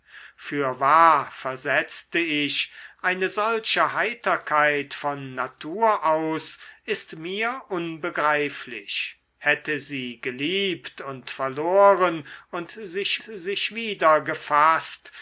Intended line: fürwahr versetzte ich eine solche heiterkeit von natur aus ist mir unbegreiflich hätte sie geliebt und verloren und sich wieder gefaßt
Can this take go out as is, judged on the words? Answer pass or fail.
fail